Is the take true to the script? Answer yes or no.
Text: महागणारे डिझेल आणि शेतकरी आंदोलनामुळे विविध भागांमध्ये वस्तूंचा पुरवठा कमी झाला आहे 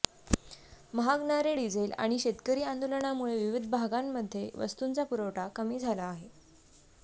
yes